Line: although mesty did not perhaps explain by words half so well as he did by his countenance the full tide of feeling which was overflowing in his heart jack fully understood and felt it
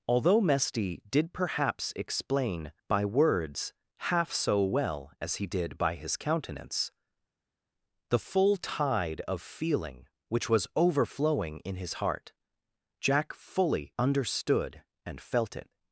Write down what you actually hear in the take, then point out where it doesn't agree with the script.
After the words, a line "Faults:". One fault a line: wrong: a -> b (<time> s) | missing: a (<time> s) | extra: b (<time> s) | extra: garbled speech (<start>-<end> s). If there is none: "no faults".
although mesty did perhaps explain by words half so well as he did by his countenance the full tide of feeling which was overflowing in his heart jack fully understood and felt it
Faults:
missing: not (1.3 s)